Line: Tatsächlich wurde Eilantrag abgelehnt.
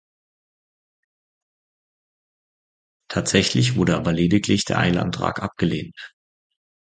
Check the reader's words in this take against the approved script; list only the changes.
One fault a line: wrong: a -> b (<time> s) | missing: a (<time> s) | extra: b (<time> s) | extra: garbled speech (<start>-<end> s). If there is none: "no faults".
extra: aber lediglich der (4.0 s)